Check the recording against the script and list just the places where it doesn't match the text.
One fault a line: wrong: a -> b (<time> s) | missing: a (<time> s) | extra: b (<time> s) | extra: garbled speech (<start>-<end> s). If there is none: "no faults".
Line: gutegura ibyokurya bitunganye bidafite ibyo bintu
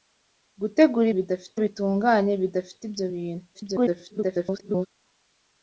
wrong: ibyokurya -> bidafite (1.2 s)
extra: garbled speech (3.5-4.9 s)